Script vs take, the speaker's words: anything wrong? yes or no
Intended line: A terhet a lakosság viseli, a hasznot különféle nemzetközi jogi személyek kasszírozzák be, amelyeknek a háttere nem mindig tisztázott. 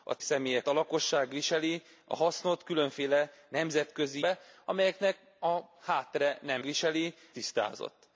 yes